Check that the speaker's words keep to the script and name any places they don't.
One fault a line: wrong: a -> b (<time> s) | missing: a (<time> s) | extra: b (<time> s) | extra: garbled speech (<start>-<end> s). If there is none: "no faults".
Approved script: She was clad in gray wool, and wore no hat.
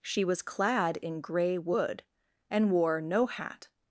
wrong: wool -> wood (1.6 s)